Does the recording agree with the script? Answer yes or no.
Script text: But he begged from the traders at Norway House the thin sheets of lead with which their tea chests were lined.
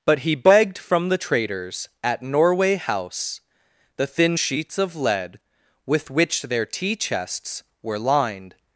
yes